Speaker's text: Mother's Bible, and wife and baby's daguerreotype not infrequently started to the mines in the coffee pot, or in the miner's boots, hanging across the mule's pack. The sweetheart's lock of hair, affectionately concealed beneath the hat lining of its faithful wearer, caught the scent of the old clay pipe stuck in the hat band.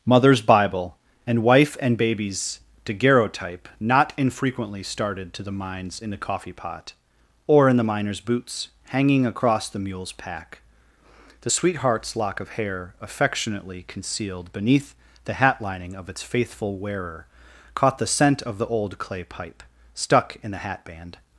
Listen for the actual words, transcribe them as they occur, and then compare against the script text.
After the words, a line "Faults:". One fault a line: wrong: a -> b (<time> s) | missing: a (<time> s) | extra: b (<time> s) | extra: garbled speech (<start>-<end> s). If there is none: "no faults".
Mother's Bible, and wife and baby's daguerreotype not infrequently started to the mines in the coffee pot, or in the miner's boots, hanging across the mule's pack. The sweetheart's lock of hair, affectionately concealed beneath the hat lining of its faithful wearer, caught the scent of the old clay pipe stuck in the hat band.
Faults:
no faults